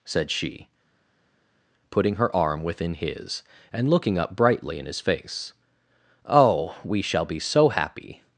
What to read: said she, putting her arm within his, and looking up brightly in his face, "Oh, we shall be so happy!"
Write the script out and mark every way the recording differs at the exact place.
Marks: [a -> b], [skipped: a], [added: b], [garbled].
said she, putting her arm within his, and looking up brightly in his face, "Oh, we shall be so happy!"